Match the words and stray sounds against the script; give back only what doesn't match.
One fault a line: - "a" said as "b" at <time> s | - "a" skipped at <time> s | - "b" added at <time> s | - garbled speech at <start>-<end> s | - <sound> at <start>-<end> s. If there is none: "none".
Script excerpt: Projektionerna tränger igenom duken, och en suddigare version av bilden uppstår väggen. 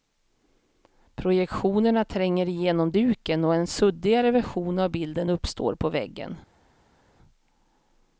- "på" added at 5.7 s